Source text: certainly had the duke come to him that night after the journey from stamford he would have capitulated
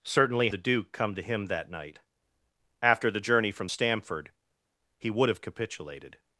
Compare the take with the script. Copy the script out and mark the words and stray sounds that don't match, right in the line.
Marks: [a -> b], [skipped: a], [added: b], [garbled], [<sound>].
certainly [skipped: had] the duke come to him that night after the journey from stamford he would have capitulated